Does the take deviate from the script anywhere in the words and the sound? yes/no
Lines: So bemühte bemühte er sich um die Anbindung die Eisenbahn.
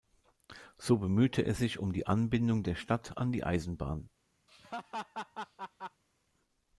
yes